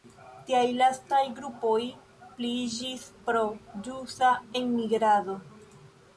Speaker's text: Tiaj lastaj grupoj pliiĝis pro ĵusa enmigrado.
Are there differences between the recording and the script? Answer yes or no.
no